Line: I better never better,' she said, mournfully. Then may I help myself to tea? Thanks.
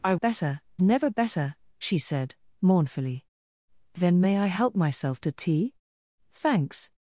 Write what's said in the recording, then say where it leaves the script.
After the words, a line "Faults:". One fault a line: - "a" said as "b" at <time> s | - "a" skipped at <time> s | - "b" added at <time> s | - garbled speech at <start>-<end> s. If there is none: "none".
I better never better,' she said, mournfully. Then may I help myself to tea? Thanks.
Faults:
none